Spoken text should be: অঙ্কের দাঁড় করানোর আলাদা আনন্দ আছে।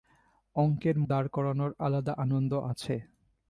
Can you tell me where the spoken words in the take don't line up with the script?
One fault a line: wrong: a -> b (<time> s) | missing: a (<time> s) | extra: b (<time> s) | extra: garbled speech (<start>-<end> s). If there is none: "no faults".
no faults